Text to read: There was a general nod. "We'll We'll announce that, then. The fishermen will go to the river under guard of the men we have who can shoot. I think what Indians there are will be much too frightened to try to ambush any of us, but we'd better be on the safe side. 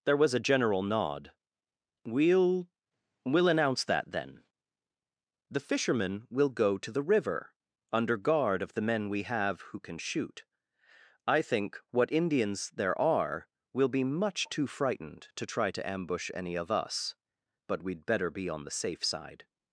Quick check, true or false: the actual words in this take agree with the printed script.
true